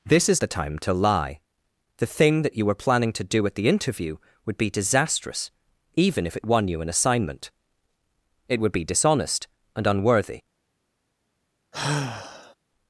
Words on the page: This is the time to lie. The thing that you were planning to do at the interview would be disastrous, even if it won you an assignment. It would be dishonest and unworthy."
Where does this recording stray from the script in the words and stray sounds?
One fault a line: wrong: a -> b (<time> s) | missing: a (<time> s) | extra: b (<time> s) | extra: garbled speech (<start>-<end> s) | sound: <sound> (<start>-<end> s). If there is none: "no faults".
sound: sigh (11.7-12.6 s)